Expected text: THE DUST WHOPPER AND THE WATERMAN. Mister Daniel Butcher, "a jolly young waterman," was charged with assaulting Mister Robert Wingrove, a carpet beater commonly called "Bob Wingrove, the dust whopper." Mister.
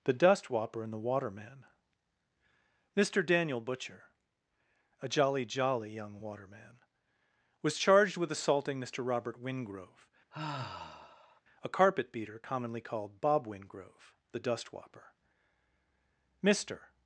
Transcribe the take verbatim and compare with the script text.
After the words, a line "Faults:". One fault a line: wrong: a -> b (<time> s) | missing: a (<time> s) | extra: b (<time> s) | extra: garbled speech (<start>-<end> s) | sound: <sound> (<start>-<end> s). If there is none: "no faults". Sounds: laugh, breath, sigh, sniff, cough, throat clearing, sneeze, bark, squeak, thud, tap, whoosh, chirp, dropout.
THE DUST WHOPPER AND THE WATERMAN. Mister Daniel Butcher, "a jolly jolly young waterman," was charged with assaulting Mister Robert Wingrove, a carpet beater commonly called "Bob Wingrove, the dust whopper." Mister.
Faults:
extra: jolly (5.4 s)
sound: sigh (10.3-11.4 s)